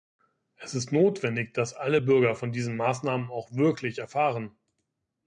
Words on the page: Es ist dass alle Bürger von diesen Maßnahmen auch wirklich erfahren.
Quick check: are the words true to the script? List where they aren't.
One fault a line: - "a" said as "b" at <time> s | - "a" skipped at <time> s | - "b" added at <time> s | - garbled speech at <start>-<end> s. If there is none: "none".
- "notwendig" added at 0.9 s